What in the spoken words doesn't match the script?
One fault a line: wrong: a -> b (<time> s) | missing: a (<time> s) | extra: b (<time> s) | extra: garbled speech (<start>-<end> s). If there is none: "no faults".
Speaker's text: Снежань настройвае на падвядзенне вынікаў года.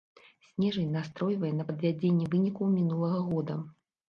extra: мінулага (2.8 s)